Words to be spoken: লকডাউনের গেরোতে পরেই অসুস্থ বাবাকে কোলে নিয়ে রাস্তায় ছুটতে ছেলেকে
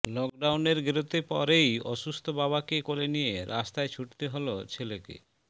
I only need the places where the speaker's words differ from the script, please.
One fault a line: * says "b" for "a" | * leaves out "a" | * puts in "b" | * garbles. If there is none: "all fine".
* puts in "হল"